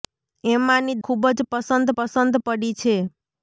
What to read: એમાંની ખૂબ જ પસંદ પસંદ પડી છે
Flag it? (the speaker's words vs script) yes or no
no